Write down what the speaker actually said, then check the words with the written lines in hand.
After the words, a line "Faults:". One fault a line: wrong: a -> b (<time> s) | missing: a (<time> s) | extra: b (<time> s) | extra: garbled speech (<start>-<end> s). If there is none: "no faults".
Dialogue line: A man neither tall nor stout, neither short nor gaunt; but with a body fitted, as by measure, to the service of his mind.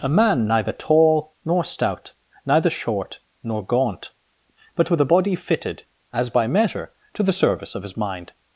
A man neither tall nor stout, neither short nor gaunt; but with a body fitted, as by measure, to the service of his mind.
Faults:
no faults